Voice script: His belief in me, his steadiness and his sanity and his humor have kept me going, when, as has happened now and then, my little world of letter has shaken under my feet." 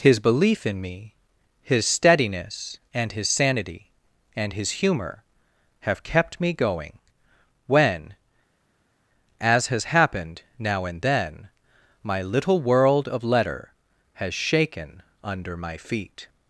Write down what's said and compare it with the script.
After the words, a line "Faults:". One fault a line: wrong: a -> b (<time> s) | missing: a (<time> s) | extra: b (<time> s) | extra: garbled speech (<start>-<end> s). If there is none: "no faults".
His belief in me, his steadiness and his sanity and his humor have kept me going, when, as has happened now and then, my little world of letter has shaken under my feet."
Faults:
no faults